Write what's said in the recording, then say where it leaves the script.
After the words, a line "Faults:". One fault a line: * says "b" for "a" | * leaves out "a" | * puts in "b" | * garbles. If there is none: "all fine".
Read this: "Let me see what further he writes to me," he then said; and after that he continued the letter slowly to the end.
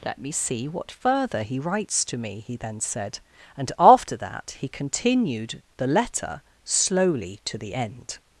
"Let me see what further he writes to me," he then said; and after that he continued the letter slowly to the end.
Faults:
all fine